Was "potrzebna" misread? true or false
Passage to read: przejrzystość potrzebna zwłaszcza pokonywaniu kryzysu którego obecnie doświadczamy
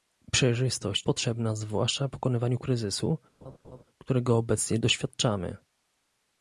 false